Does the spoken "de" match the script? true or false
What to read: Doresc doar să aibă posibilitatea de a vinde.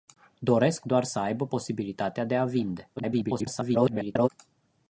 true